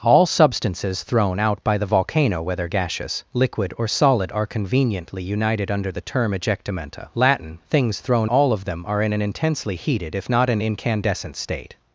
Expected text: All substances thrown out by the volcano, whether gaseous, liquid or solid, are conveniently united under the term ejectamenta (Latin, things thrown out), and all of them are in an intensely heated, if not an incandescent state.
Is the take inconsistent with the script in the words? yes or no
yes